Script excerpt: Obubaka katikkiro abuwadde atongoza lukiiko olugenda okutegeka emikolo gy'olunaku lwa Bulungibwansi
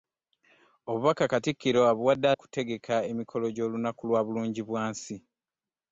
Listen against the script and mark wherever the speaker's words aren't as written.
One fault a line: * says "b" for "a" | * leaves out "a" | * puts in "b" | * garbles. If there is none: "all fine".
* leaves out "atongoza lukiiko olugenda"